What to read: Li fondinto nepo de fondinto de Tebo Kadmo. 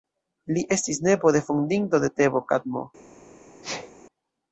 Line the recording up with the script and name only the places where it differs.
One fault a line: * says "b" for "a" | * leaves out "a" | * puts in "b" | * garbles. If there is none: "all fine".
* says "estis" for "fondinto"